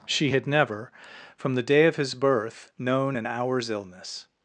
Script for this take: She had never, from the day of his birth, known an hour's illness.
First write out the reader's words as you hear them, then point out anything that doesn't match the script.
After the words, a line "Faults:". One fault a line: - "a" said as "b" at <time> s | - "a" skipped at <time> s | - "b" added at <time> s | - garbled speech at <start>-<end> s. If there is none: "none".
She had never, from the day of his birth, known an hour's illness.
Faults:
none